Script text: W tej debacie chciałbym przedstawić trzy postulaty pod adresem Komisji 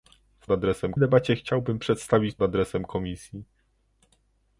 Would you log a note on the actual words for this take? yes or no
yes